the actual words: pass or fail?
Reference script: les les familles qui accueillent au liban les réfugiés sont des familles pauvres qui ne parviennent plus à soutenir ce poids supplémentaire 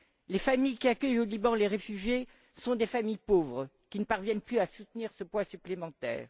fail